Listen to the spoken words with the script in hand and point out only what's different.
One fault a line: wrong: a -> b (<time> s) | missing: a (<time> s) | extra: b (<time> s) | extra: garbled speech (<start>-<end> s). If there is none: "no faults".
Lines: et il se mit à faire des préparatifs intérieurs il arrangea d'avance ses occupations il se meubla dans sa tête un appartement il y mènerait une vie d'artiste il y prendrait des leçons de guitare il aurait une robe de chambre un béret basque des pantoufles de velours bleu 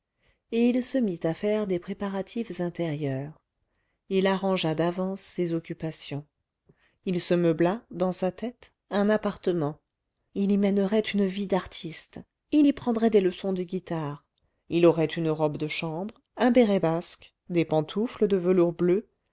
no faults